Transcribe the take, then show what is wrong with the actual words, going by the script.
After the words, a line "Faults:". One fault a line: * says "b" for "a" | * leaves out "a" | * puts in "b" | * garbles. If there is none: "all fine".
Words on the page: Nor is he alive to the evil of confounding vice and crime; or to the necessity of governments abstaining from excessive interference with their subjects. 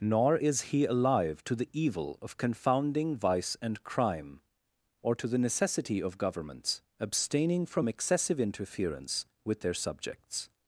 Nor is he alive to the evil of confounding vice and crime; or to the necessity of governments abstaining from excessive interference with their subjects.
Faults:
all fine